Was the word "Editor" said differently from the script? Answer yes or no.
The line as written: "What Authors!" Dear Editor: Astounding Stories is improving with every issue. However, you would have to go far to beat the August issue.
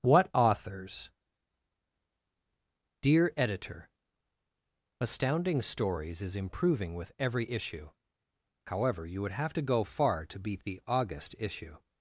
no